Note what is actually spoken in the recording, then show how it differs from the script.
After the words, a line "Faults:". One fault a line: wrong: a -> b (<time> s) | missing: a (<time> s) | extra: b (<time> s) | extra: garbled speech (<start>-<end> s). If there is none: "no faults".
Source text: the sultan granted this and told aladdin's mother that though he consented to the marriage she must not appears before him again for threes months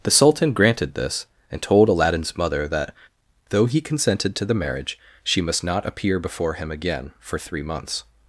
the sultan granted this and told aladdin's mother that though he consented to the marriage she must not appear before him again for three months
Faults:
wrong: appears -> appear (5.8 s)
wrong: threes -> three (7.4 s)